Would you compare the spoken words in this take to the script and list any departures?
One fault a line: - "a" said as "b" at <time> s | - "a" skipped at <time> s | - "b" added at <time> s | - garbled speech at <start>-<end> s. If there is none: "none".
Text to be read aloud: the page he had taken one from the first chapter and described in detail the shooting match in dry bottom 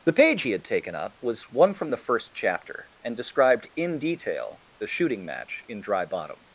- "up was" added at 0.9 s